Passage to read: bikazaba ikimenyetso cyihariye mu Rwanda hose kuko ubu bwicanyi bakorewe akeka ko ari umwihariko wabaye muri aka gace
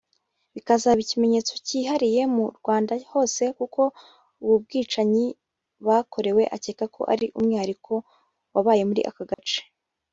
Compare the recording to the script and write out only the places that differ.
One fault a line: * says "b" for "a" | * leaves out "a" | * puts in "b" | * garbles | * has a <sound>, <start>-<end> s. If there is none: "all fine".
* has a dropout, 9.3-9.4 s